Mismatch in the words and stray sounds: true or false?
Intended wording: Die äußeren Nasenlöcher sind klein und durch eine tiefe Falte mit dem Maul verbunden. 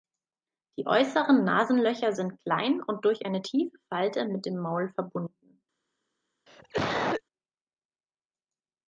true